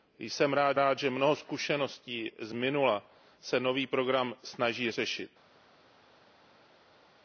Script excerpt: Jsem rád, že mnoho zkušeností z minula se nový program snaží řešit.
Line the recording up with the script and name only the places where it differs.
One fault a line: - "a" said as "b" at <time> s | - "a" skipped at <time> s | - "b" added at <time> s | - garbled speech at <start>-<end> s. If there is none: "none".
- "rád" added at 0.7 s